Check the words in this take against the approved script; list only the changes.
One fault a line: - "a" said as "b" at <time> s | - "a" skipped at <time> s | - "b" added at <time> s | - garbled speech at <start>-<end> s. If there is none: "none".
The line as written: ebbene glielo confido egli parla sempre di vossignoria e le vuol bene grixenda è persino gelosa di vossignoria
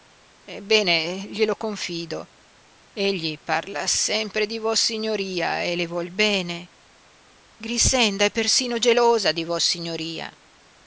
none